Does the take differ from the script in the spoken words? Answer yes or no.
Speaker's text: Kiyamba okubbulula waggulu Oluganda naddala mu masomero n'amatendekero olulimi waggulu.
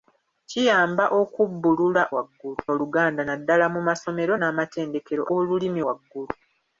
no